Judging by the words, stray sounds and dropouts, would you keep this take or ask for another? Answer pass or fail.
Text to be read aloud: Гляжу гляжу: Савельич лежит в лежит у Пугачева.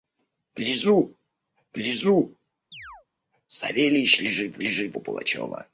fail